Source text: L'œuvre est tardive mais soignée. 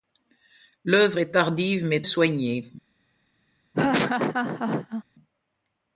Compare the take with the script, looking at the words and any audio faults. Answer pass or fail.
fail